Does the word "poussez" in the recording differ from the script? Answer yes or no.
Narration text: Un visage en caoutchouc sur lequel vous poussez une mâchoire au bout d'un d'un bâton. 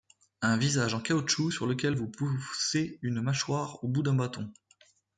no